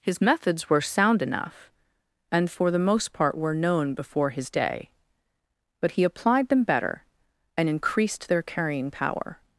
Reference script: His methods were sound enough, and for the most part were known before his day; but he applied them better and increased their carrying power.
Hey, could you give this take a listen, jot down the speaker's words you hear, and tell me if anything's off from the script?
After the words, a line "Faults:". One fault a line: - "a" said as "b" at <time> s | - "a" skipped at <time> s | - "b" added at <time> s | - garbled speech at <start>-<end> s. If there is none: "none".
His methods were sound enough, and for the most part were known before his day; but he applied them better and increased their carrying power.
Faults:
none